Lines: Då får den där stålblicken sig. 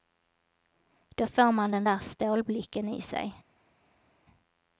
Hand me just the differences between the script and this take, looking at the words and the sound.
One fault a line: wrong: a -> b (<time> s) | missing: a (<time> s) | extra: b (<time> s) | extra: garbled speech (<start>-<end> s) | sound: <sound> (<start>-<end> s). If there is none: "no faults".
extra: man (1.5 s)
extra: i (2.9 s)